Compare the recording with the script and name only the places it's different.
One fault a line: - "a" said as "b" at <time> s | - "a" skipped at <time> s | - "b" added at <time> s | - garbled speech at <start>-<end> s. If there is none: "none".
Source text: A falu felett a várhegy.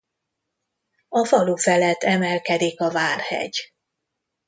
- "emelkedik" added at 2.0 s